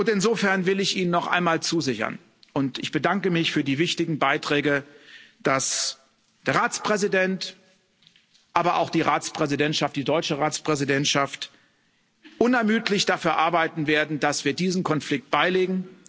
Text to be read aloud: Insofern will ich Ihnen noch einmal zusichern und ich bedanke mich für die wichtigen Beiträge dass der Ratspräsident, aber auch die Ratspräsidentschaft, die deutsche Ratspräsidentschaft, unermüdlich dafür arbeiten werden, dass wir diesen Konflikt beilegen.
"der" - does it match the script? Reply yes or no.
yes